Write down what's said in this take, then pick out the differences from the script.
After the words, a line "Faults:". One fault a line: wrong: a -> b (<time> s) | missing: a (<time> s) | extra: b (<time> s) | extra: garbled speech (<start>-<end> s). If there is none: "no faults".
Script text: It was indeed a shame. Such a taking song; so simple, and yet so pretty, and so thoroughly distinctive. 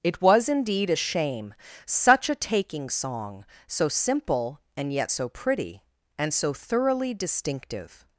It was indeed a shame. Such a taking song; so simple, and yet so pretty, and so thoroughly distinctive.
Faults:
no faults